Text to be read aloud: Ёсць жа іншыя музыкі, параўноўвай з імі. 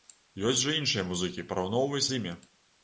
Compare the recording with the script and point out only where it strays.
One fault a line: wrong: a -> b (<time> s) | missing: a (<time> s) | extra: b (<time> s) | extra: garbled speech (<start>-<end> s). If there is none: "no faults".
no faults